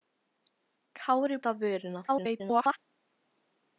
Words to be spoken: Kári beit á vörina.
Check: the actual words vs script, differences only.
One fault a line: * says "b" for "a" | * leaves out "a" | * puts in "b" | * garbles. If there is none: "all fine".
* leaves out "beit"
* garbles